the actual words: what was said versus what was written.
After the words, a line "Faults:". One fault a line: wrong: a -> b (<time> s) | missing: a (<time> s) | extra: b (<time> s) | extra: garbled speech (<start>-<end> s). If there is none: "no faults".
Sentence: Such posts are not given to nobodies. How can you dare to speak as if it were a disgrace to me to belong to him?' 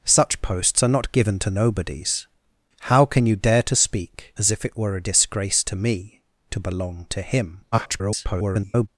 Such posts are not given to nobodies. How can you dare to speak as if it were a disgrace to me to belong to him?' [garbled]
Faults:
extra: garbled speech (7.7-8.9 s)